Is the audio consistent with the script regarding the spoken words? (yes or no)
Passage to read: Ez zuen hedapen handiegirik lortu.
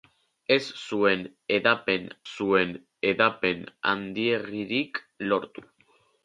no